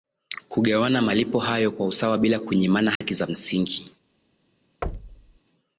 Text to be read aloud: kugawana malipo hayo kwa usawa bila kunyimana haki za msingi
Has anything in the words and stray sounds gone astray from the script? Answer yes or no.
yes